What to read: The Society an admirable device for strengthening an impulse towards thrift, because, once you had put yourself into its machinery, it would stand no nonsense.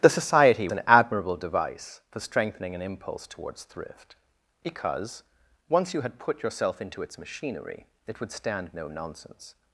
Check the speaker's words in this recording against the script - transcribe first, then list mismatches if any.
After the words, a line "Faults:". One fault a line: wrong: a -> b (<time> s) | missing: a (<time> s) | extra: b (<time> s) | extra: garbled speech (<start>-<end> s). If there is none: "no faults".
The Society an admirable device for strengthening an impulse towards thrift, because, once you had put yourself into its machinery, it would stand no nonsense.
Faults:
no faults